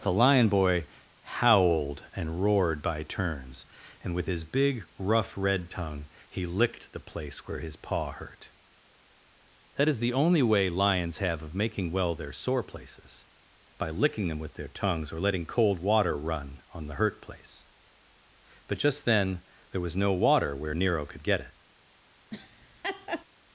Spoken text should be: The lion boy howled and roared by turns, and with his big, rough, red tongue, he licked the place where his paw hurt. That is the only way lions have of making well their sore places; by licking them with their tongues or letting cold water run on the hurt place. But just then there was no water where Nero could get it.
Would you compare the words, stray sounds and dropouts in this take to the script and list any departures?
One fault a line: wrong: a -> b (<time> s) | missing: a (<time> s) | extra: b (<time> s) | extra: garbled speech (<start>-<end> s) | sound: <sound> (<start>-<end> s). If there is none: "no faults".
sound: laugh (22.3-23.2 s)